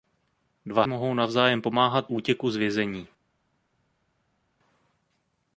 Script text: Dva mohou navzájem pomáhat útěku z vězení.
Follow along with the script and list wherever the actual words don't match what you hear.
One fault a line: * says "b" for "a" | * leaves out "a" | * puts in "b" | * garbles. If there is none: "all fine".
all fine